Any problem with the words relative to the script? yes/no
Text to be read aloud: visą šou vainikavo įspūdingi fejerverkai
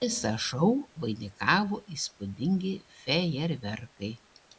no